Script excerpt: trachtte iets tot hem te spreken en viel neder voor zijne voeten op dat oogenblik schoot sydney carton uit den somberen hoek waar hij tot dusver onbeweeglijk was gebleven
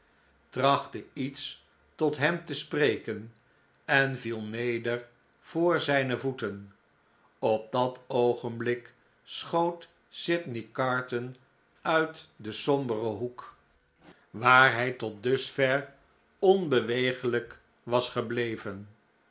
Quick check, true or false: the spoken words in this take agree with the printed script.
true